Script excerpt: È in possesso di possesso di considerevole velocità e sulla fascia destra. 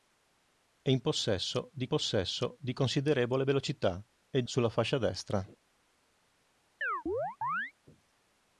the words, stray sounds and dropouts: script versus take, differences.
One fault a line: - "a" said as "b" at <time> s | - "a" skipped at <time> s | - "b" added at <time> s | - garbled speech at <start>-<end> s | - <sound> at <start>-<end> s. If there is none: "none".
- chirp at 6.8-7.7 s